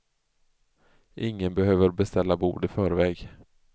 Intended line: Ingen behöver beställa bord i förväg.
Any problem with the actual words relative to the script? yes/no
no